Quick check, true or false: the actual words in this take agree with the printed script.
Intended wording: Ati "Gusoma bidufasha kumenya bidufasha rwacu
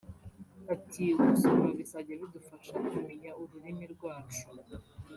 false